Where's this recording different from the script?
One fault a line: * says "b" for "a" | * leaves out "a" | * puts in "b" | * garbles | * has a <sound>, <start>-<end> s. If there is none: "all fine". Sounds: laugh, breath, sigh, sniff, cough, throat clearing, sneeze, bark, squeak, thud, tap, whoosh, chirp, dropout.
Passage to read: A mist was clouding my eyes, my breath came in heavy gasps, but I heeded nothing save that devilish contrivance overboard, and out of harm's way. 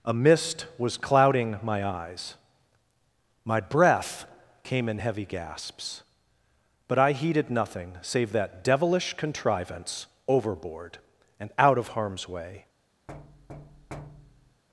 * has a thud, 13.1-14.6 s